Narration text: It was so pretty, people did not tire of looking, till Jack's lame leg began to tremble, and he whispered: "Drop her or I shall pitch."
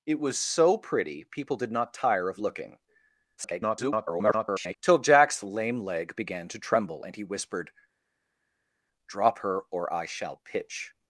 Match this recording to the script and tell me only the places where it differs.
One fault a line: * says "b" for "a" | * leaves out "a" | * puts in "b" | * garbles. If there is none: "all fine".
* garbles